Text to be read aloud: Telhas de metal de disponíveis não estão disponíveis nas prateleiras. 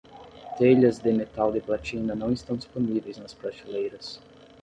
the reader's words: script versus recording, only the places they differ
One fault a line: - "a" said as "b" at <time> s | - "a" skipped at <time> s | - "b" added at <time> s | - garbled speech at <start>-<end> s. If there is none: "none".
- "disponíveis" said as "platina" at 1.6 s